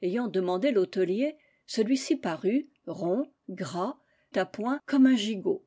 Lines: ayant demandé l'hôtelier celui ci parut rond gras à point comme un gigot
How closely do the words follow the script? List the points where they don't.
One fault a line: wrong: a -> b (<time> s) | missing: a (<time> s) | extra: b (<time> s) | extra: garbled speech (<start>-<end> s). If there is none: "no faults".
no faults